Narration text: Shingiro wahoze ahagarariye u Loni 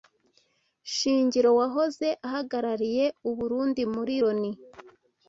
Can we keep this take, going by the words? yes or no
no